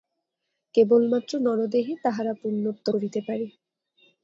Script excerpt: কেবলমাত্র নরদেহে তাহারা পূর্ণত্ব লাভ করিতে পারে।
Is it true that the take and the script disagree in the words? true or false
true